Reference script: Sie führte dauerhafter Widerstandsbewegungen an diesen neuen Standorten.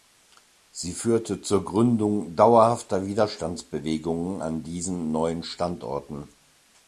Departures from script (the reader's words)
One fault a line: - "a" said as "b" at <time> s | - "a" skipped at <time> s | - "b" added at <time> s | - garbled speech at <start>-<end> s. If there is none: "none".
- "zur Gründung" added at 1.4 s